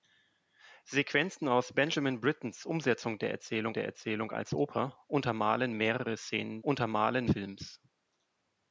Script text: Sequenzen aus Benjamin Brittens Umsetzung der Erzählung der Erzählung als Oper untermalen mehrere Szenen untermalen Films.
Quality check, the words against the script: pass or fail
pass